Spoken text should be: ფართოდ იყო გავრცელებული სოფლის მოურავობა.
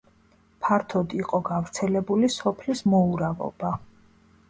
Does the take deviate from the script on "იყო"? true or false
false